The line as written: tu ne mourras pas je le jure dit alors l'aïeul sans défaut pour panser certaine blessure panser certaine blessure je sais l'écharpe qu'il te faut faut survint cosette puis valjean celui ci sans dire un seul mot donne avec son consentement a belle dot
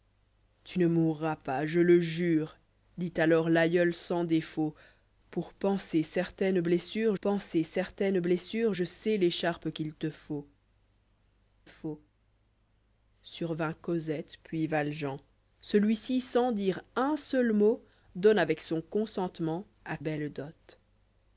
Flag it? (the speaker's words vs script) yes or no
no